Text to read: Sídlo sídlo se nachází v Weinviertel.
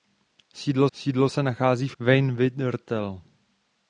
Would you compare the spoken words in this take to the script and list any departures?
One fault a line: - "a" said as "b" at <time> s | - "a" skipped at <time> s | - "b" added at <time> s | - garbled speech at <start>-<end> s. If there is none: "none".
none